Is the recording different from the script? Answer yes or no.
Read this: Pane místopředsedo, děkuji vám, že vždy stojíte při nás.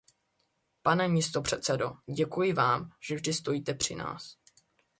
no